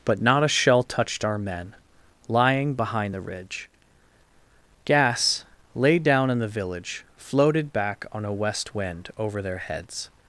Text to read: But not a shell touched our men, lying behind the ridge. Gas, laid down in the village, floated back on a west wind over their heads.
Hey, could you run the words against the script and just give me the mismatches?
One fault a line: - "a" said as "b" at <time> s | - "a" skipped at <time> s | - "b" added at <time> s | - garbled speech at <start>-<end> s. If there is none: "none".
none